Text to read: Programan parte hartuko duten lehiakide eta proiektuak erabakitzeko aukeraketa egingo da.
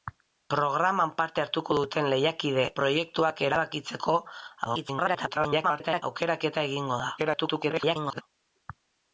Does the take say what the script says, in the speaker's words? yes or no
no